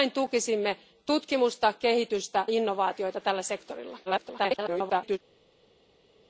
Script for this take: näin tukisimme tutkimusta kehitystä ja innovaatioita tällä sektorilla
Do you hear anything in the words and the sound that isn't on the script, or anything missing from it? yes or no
yes